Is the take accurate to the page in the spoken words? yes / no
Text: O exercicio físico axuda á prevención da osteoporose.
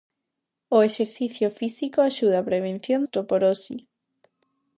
no